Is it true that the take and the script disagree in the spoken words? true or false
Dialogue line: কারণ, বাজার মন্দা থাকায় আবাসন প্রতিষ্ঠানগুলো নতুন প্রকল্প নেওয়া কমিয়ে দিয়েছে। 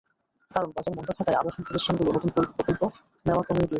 false